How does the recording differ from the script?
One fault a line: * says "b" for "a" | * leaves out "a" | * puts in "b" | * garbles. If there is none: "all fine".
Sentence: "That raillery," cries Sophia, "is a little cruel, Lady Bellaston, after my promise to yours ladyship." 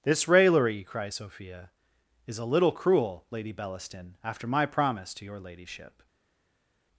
* says "This" for "That"
* says "your" for "yours"